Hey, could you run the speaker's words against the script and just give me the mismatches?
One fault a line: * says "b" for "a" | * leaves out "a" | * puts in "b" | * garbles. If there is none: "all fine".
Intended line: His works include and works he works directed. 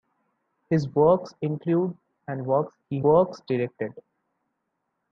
all fine